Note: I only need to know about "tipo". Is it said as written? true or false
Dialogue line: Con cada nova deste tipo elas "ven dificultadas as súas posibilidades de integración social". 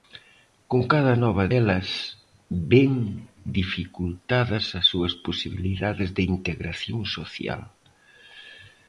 false